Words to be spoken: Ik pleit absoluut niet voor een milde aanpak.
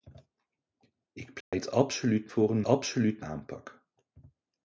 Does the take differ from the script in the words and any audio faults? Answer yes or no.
yes